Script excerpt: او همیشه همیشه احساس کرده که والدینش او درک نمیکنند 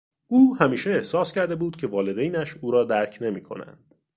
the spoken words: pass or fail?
fail